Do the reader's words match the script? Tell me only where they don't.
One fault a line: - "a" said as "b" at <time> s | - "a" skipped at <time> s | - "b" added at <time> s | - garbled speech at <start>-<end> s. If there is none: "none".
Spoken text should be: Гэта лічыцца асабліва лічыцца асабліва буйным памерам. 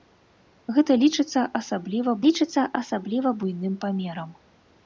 none